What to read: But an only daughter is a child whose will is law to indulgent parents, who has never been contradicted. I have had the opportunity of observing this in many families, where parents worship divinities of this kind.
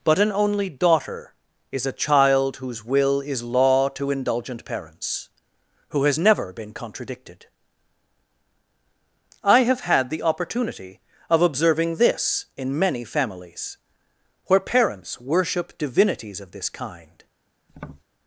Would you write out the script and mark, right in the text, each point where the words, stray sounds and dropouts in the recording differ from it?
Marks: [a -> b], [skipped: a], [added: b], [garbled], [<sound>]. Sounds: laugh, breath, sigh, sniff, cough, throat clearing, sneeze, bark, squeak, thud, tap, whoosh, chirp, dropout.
But an only daughter is a child whose will is law to indulgent parents, who has never been contradicted. I have had the opportunity of observing this in many families, where parents worship divinities of this kind. [tap]